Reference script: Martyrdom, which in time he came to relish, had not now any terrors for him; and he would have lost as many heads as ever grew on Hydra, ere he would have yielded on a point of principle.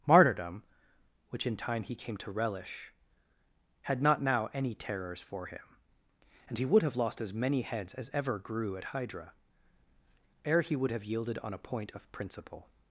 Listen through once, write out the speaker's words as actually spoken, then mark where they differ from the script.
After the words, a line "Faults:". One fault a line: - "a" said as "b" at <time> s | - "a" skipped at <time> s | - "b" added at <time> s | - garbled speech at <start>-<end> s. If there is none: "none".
Martyrdom, which in time he came to relish, had not now any terrors for him; and he would have lost as many heads as ever grew at Hydra, ere he would have yielded on a point of principle.
Faults:
- "on" said as "at" at 8.8 s